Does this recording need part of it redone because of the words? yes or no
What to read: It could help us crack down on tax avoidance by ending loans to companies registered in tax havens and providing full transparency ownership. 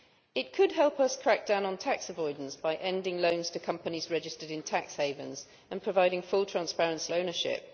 no